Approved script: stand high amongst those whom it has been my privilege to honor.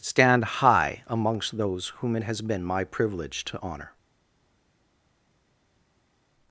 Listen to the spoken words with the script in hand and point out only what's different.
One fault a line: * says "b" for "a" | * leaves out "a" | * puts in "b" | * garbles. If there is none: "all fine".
all fine